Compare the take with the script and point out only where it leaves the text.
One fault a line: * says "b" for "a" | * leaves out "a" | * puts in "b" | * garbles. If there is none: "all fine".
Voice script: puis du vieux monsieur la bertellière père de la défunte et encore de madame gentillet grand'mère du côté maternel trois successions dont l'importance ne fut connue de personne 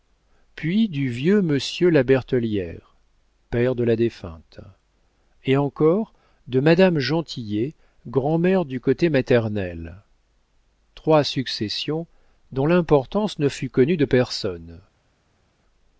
all fine